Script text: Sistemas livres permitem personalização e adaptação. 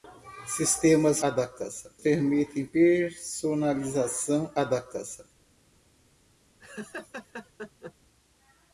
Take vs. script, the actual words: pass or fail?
fail